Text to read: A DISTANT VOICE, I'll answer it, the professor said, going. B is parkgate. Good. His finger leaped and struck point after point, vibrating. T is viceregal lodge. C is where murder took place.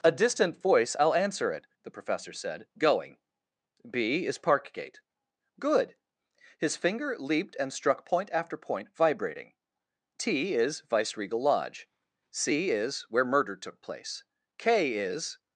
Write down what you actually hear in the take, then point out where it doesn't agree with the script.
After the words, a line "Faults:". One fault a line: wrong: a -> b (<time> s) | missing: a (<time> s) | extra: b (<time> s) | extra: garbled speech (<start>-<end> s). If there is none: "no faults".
A DISTANT VOICE, I'll answer it, the professor said, going. B is parkgate. Good. His finger leaped and struck point after point, vibrating. T is viceregal lodge. C is where murder took place. K is
Faults:
extra: K is (14.6 s)